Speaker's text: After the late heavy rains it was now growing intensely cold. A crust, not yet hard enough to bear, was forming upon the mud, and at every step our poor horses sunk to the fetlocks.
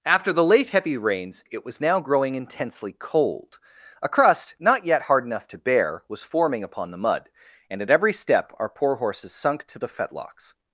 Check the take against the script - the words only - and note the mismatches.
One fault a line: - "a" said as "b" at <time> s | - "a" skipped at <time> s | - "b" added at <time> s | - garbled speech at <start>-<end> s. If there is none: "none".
none